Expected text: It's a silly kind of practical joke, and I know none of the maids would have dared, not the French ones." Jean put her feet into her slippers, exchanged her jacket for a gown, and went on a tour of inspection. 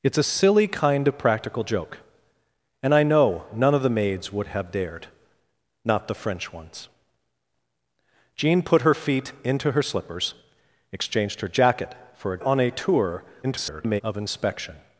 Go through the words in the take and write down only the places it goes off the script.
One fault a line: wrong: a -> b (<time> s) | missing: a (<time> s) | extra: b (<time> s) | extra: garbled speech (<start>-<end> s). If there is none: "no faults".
missing: gown and went (12.4 s)
extra: garbled speech (13.4-14.0 s)